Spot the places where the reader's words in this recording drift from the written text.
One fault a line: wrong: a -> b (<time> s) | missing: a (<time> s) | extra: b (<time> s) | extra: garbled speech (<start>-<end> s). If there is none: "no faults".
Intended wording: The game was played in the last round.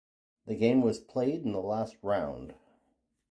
no faults